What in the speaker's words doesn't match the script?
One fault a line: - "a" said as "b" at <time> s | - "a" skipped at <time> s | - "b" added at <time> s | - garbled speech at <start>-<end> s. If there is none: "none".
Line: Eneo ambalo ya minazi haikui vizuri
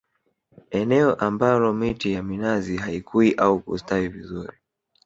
- "miti" added at 1.7 s
- "au kustawi" added at 3.3 s